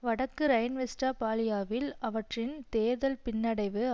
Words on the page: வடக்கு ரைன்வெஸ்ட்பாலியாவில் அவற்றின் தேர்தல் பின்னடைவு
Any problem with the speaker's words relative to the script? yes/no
no